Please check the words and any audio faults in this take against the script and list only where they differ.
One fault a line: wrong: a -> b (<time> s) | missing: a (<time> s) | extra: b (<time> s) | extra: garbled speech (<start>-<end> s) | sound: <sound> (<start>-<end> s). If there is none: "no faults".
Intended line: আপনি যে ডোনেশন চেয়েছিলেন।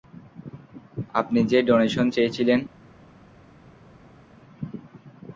no faults